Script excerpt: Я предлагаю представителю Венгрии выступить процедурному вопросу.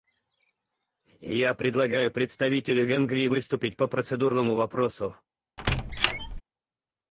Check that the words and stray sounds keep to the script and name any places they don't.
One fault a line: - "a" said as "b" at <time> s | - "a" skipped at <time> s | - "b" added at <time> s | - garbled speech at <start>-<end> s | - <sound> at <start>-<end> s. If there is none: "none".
- "по" added at 3.7 s
- squeak at 5.6-6.4 s